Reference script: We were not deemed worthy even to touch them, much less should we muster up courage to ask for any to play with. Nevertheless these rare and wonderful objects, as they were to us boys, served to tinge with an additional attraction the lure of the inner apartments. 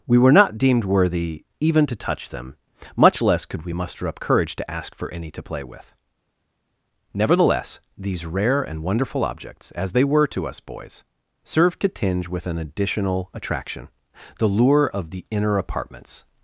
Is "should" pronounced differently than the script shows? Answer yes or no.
yes